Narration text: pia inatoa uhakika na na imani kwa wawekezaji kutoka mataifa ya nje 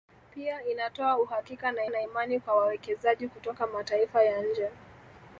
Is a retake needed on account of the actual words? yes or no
no